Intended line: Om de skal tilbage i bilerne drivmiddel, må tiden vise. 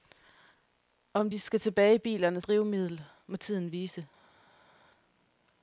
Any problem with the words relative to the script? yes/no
no